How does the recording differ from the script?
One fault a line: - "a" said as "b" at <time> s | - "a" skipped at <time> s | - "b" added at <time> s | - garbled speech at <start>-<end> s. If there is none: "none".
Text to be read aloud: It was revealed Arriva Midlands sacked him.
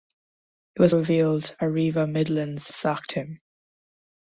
none